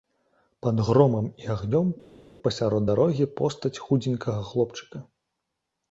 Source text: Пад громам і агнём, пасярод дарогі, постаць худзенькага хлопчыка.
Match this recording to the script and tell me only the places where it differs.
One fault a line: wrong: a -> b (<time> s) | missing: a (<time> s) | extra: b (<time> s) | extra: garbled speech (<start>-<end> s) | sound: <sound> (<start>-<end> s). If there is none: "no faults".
no faults